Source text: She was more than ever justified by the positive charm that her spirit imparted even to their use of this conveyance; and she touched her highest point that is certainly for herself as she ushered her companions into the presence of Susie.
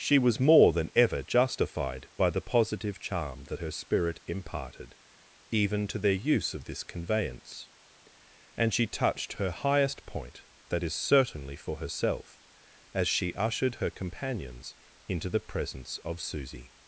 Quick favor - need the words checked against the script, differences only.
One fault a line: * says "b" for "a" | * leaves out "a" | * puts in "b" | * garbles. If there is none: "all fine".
all fine